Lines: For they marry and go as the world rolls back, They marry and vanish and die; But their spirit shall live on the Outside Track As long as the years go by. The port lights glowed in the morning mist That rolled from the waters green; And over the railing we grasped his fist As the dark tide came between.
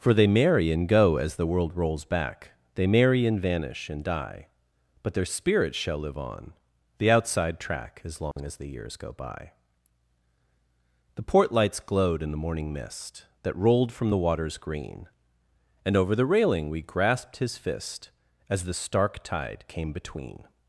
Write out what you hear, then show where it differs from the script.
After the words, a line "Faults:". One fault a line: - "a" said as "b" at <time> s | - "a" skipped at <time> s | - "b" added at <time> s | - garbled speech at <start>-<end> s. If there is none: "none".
For they marry and go as the world rolls back, They marry and vanish and die; But their spirit shall live on the Outside Track As long as the years go by. The port lights glowed in the morning mist That rolled from the waters green; And over the railing we grasped his fist As the stark tide came between.
Faults:
- "dark" said as "stark" at 18.7 s